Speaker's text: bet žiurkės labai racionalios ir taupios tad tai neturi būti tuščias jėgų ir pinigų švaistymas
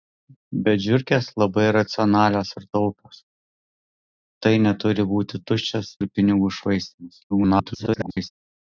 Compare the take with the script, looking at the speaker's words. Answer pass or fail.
fail